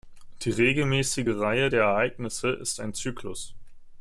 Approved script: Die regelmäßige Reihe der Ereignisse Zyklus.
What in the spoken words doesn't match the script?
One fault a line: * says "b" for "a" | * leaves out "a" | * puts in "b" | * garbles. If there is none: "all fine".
* puts in "ist ein"